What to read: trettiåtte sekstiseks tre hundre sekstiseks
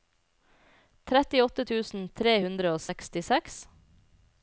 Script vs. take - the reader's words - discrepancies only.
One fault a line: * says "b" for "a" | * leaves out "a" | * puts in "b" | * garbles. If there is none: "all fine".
* says "tusen" for "sekstiseks"
* puts in "og"